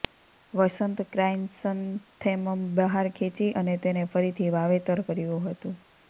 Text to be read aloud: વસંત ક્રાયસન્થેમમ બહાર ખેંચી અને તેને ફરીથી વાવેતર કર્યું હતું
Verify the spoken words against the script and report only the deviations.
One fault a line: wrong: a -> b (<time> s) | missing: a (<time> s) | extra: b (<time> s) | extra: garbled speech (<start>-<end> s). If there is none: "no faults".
no faults